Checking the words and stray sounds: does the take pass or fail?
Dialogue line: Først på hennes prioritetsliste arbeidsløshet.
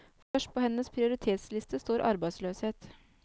fail